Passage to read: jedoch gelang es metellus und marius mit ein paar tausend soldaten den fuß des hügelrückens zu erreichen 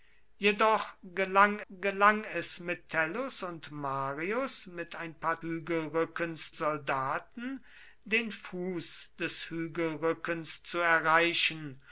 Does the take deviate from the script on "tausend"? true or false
true